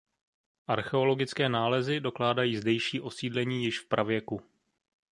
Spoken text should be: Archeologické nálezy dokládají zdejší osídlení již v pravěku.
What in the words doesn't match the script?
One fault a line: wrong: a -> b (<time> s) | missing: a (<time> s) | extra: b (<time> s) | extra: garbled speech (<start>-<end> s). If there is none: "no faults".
no faults